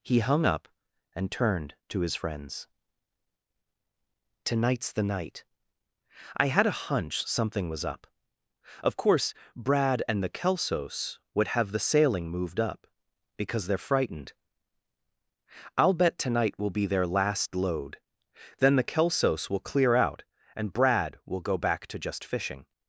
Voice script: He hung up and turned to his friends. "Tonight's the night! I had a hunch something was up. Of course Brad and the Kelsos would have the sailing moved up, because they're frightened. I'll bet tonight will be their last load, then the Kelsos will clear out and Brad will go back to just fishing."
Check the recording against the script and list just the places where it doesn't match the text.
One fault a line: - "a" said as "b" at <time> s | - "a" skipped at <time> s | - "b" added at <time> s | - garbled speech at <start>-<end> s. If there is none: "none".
none